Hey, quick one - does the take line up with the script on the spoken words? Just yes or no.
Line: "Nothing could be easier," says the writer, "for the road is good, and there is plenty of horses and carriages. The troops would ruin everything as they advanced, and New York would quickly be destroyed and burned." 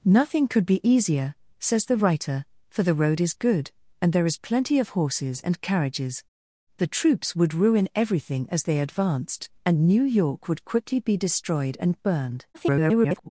no